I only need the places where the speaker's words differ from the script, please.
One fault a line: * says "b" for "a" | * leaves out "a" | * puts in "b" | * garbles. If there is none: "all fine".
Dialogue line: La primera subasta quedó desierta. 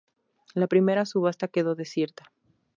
all fine